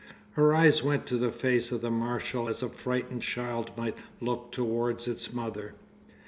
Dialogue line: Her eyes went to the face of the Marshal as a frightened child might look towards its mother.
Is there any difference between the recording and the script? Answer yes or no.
no